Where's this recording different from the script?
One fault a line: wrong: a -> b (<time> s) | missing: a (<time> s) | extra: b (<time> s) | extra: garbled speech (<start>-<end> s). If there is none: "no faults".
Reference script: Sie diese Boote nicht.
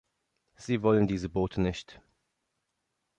extra: wollen (0.8 s)